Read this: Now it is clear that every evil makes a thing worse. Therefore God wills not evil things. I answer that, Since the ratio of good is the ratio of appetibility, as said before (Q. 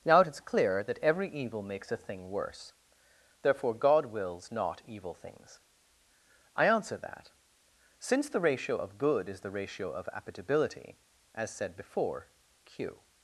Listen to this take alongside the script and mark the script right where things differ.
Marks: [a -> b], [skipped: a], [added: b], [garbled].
Now it is clear that every evil makes a thing worse. Therefore God wills not evil things. I answer that, Since the ratio of good is the ratio of appetibility, as said before (Q.